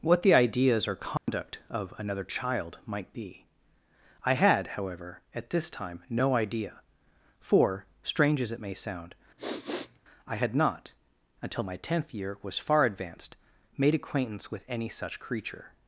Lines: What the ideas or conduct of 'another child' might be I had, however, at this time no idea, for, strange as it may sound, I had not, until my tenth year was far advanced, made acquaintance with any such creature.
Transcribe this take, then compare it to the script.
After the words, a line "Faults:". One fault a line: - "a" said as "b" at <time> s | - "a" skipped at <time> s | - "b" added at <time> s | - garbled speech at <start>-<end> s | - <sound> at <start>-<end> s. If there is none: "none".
What the ideas or conduct of 'another child' might be I had, however, at this time no idea, for, strange as it may sound, I had not, until my tenth year was far advanced, made acquaintance with any such creature.
Faults:
- dropout at 1.2-1.3 s
- sniff at 9.4-10.0 s